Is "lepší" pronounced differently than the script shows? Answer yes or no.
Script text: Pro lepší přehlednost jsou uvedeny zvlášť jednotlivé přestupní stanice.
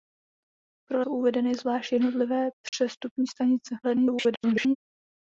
yes